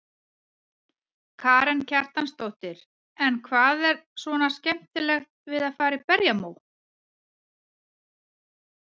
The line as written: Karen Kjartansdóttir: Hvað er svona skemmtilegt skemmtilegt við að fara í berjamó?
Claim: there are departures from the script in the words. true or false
true